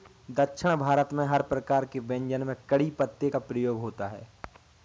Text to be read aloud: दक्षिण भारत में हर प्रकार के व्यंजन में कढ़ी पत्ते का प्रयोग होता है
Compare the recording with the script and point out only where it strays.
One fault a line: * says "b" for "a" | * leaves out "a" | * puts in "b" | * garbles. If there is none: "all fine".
all fine